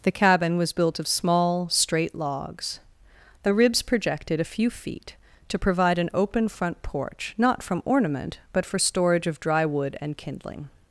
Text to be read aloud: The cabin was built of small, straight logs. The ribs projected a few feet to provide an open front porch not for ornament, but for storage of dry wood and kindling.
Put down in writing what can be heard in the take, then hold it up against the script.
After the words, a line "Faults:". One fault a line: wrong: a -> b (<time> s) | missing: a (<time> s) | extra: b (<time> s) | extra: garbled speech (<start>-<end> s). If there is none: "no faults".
The cabin was built of small, straight logs. The ribs projected a few feet to provide an open front porch not from ornament, but for storage of dry wood and kindling.
Faults:
wrong: for -> from (7.6 s)